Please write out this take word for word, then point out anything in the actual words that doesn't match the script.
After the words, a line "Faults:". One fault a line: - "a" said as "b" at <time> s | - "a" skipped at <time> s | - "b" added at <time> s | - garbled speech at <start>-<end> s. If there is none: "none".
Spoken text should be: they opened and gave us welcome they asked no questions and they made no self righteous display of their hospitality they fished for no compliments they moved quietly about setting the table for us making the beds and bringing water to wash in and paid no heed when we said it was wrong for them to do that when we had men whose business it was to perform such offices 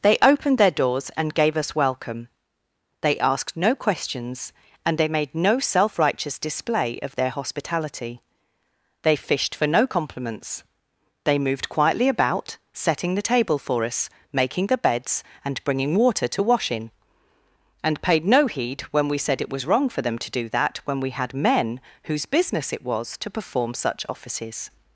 they opened their doors and gave us welcome they asked no questions and they made no self righteous display of their hospitality they fished for no compliments they moved quietly about setting the table for us making the beds and bringing water to wash in and paid no heed when we said it was wrong for them to do that when we had men whose business it was to perform such offices
Faults:
- "their doors" added at 0.6 s